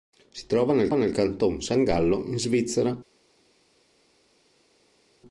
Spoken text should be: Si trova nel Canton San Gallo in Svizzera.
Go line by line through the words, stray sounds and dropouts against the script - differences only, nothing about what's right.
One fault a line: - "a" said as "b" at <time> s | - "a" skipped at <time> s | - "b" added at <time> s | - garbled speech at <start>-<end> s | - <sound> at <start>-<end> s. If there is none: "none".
- "nel" added at 0.9 s